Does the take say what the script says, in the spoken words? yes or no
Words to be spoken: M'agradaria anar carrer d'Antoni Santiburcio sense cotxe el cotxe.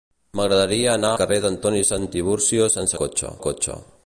yes